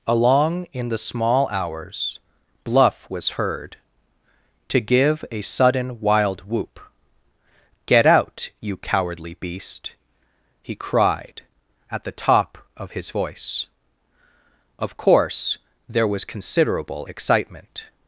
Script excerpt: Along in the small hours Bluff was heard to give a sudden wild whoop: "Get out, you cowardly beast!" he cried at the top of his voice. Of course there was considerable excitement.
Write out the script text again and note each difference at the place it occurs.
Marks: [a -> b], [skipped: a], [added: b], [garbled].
Along in the small hours Bluff was heard to give a sudden wild whoop: "Get out, you cowardly beast!" he cried at the top of his voice. Of course there was considerable excitement.